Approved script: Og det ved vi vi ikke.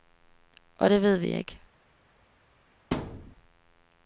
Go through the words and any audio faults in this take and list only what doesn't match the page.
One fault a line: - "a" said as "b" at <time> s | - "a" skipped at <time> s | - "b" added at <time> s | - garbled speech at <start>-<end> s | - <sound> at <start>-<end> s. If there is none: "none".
- "vi" skipped at 1.3 s
- thud at 2.9-3.3 s